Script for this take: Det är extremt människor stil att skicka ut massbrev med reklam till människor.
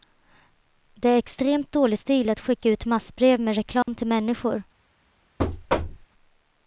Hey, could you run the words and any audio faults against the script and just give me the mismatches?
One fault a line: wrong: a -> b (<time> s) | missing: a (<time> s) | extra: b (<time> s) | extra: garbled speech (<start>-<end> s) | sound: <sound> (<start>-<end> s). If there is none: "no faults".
wrong: människor -> dålig (1.7 s)
sound: dropout (3.8-3.9 s)
sound: thud (5.4-6.1 s)